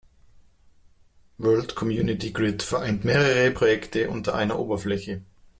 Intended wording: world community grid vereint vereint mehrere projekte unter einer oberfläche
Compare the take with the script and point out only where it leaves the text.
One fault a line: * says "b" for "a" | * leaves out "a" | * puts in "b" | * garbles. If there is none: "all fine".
* leaves out "vereint"